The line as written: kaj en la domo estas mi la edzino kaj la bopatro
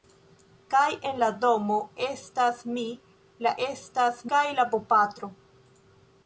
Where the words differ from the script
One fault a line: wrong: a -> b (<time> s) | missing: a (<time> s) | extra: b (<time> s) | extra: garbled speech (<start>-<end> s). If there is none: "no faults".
wrong: edzino -> estas (3.6 s)